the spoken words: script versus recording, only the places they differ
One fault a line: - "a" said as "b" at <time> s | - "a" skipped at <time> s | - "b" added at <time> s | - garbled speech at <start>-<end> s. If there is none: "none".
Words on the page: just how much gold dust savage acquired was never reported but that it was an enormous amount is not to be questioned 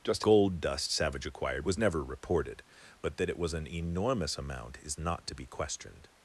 - "how much" skipped at 0.2 s